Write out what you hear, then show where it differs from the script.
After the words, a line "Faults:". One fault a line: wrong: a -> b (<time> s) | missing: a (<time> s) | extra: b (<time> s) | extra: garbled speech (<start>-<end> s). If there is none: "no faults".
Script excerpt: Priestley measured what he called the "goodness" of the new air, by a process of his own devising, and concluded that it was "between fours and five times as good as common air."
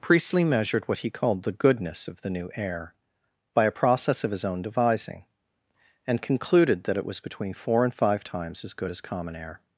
Priestley measured what he called the "goodness" of the new air, by a process of his own devising, and concluded that it was "between four and five times as good as common air."
Faults:
wrong: fours -> four (7.5 s)